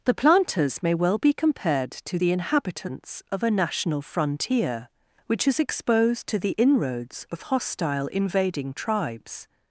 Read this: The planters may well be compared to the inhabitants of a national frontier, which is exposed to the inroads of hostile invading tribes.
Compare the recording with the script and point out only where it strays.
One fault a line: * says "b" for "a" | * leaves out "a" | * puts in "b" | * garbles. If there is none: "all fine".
all fine